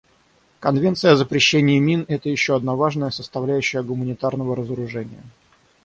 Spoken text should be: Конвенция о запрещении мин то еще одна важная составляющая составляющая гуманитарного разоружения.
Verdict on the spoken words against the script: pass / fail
fail